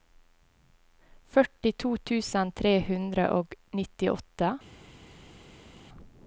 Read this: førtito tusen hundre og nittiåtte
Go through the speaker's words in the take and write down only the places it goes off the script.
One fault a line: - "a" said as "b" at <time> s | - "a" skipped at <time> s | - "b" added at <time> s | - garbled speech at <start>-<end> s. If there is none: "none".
- "tre" added at 2.6 s